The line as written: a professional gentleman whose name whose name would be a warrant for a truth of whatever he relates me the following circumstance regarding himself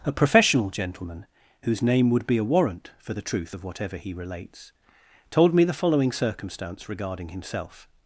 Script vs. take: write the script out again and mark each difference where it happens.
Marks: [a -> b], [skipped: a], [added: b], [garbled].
a professional gentleman whose name [skipped: whose name] would be a warrant for [a -> the] truth of whatever he relates [added: told] me the following circumstance regarding himself